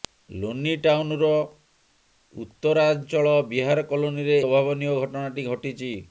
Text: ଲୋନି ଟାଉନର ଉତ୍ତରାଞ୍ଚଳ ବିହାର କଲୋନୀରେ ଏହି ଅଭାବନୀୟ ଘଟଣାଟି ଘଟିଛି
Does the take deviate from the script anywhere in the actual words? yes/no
yes